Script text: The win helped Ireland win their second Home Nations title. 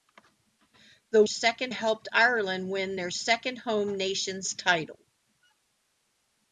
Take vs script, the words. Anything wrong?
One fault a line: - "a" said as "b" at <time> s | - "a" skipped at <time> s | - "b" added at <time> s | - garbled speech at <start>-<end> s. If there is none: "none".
- "win" said as "second" at 1.3 s